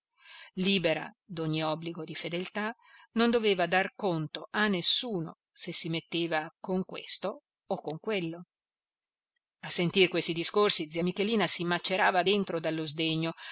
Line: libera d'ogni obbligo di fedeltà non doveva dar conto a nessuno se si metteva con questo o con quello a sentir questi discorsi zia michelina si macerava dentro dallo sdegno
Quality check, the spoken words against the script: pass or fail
pass